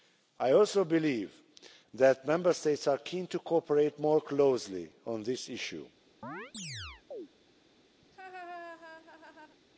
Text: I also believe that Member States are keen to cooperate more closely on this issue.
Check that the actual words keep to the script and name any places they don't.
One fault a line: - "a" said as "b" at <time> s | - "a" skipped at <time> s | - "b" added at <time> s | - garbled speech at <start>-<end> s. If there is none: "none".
none